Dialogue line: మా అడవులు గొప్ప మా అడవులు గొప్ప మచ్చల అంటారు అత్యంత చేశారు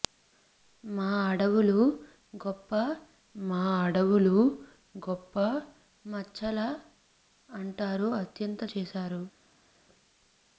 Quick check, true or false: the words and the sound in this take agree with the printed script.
true